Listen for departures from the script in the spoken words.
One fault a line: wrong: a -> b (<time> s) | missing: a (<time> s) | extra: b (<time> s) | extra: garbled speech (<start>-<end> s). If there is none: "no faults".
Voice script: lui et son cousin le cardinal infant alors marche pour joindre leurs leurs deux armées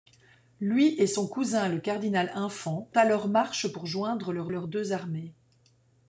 no faults